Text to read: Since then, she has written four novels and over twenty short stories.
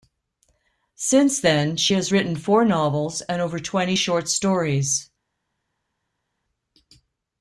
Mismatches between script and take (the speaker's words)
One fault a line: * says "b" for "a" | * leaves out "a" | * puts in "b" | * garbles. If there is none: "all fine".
all fine